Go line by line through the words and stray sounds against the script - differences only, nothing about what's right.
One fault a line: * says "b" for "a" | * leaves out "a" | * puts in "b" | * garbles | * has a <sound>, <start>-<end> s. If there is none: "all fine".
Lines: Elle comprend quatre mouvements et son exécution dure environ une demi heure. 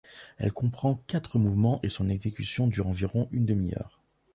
all fine